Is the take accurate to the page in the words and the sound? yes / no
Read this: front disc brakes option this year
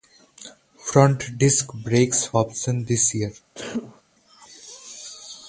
no